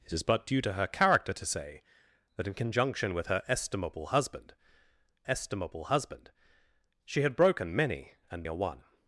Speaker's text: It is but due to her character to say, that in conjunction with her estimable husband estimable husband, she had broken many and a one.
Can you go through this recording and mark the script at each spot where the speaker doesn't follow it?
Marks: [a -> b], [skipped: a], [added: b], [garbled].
It is but due to her character to say, that in conjunction with her estimable husband estimable husband, she had broken many and a one.